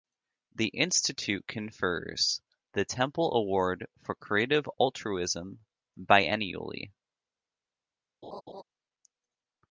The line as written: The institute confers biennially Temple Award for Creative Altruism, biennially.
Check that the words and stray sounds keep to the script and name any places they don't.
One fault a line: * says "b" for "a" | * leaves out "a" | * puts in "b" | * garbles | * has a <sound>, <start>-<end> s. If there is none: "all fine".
* says "the" for "biennially"
* has a laugh, 8.2-8.6 s